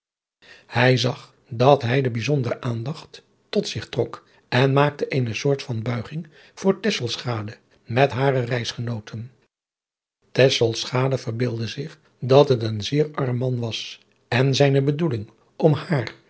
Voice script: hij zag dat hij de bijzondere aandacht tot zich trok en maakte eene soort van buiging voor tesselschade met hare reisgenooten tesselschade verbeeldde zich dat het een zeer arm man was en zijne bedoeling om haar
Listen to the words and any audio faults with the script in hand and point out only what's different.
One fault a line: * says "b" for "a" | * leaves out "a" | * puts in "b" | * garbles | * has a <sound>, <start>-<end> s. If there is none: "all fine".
all fine